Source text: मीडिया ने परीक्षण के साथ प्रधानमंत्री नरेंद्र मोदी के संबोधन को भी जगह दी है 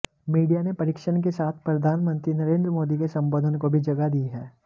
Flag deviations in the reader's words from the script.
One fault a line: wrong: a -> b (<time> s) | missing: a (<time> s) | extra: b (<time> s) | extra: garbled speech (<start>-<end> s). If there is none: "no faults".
no faults